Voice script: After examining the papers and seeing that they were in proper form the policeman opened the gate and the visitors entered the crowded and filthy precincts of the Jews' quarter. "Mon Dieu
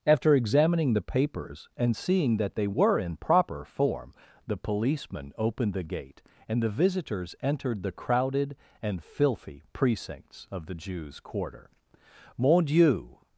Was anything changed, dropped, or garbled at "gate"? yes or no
no